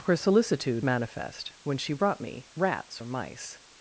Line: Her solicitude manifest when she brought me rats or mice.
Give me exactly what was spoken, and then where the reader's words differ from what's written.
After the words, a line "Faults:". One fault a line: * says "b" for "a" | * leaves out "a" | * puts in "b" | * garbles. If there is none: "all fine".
Her solicitude manifest when she brought me rats or mice.
Faults:
all fine